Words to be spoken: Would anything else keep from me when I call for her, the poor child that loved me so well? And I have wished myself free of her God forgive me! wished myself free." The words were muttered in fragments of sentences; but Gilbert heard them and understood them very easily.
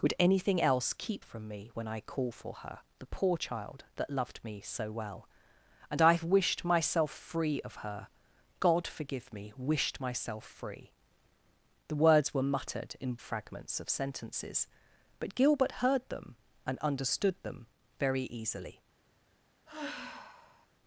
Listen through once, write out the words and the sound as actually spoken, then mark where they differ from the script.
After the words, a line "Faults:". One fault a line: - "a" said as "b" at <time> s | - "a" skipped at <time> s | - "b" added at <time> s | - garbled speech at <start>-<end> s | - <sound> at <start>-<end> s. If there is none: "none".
Would anything else keep from me when I call for her, the poor child that loved me so well? And I have wished myself free of her God forgive me! wished myself free." The words were muttered in fragments of sentences; but Gilbert heard them and understood them very easily.
Faults:
- sigh at 19.7-20.7 s